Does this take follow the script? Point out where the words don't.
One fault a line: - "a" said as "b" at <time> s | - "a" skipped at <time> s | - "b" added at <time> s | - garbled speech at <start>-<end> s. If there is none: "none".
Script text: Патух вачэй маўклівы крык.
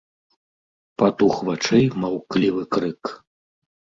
none